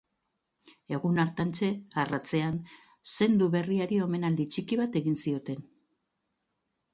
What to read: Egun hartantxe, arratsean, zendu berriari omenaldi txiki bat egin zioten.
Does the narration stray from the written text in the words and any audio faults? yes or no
no